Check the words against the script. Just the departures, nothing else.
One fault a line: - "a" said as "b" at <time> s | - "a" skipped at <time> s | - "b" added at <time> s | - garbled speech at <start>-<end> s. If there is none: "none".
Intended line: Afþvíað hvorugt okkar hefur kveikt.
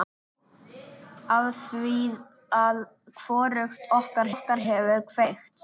- "okkar" added at 4.3 s